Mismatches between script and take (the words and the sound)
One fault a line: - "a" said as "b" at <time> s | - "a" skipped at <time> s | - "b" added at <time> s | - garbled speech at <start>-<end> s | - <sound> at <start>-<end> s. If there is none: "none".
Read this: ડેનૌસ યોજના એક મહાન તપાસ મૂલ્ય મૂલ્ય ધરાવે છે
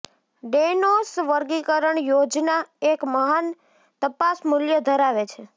- "વર્ગીકરણ" added at 1.3 s
- "મૂલ્ય" skipped at 4.8 s